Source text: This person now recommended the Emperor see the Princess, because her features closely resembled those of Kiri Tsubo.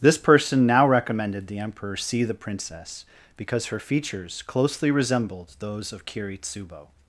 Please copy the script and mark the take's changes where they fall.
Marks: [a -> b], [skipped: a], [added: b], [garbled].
This person now recommended the Emperor see the Princess, because her features closely resembled those of Kiri Tsubo.